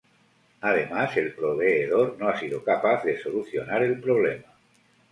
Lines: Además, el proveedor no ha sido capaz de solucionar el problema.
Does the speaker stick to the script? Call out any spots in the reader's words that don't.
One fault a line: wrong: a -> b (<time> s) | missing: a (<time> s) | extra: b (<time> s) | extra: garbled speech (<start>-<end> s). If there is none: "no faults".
no faults